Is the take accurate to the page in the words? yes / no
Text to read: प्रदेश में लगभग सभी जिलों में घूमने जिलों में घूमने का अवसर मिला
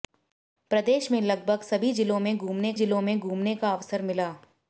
yes